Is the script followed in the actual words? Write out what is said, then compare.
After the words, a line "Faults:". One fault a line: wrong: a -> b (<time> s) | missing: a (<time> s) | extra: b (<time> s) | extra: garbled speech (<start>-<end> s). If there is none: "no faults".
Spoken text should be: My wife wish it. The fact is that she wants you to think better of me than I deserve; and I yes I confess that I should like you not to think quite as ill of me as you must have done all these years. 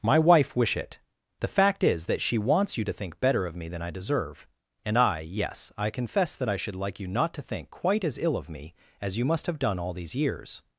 My wife wish it. The fact is that she wants you to think better of me than I deserve; and I yes I confess that I should like you not to think quite as ill of me as you must have done all these years.
Faults:
no faults